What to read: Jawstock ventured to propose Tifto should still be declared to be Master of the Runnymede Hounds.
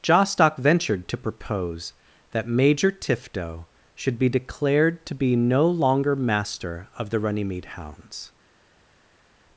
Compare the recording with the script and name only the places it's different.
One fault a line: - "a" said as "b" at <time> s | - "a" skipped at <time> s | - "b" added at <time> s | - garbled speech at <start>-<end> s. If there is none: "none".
- "that Major" added at 2.3 s
- "still" skipped at 4.2 s
- "no longer" added at 5.4 s